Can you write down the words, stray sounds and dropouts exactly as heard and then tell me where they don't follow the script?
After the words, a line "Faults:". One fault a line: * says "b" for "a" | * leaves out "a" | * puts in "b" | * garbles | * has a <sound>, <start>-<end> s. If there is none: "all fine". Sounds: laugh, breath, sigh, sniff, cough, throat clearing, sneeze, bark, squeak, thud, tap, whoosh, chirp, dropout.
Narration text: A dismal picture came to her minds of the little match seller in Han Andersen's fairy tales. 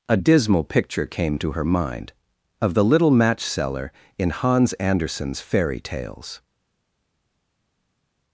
A dismal picture came to her mind of the little match seller in Hans Andersen's fairy tales.
Faults:
* says "mind" for "minds"
* says "Hans" for "Han"